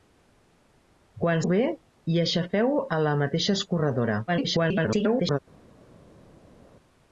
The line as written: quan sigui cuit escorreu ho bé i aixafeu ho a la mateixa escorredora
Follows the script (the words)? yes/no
no